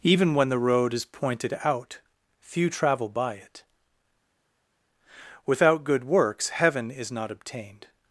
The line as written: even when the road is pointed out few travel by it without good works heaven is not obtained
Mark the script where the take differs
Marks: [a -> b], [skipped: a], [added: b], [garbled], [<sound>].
even when the road is pointed out few travel by it without good works heaven is not obtained